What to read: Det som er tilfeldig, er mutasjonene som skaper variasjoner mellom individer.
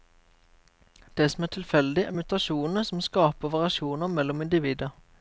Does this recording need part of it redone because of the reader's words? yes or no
no